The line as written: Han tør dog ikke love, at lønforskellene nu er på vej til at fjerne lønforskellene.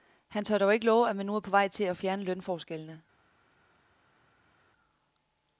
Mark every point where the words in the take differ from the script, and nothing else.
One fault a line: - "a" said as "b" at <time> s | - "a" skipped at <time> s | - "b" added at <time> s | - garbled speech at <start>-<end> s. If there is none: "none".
- "lønforskellene" said as "man" at 1.2 s